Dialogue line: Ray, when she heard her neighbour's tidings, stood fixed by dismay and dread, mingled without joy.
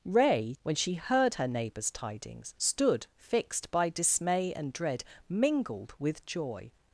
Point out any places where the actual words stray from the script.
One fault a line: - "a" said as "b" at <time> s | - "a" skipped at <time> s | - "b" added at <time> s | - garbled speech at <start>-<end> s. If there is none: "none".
- "without" said as "with" at 6.0 s